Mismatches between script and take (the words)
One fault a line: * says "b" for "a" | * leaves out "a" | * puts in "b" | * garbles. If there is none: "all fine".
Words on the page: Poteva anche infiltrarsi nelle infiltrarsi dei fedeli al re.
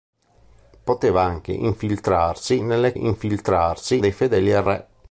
all fine